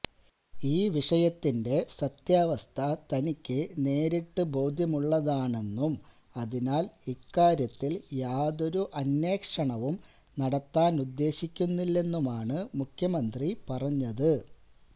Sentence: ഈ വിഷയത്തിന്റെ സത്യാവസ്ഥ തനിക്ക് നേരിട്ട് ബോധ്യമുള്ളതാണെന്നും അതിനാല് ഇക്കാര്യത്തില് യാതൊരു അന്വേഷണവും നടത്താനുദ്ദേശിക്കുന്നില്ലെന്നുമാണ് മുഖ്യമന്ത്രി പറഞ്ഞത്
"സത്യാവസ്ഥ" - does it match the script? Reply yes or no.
yes